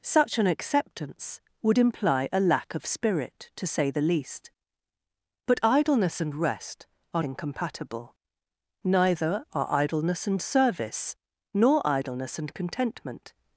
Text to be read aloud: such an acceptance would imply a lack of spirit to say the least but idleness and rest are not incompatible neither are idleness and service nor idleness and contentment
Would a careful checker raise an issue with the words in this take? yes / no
yes